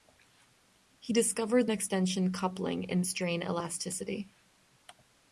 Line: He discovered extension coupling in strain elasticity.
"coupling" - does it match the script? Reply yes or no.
yes